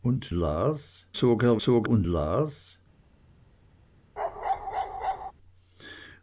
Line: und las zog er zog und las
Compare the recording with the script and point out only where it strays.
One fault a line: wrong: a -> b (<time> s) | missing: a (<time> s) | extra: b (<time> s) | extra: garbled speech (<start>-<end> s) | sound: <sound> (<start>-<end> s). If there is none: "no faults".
sound: bark (4.2-5.3 s)